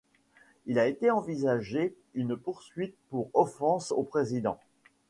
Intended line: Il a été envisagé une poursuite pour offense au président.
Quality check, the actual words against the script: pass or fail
pass